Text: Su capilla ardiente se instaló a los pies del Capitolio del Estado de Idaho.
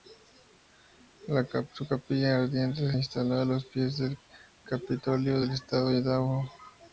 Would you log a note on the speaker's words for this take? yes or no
yes